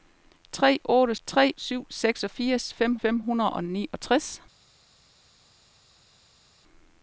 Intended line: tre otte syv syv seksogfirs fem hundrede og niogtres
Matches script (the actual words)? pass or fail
fail